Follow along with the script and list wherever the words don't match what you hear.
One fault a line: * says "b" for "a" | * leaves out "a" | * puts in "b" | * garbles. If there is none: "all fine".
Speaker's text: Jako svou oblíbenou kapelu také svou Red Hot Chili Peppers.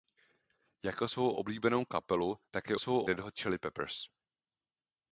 all fine